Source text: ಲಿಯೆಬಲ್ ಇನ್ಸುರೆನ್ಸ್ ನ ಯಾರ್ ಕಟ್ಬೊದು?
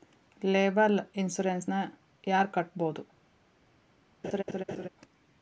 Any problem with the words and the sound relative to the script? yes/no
yes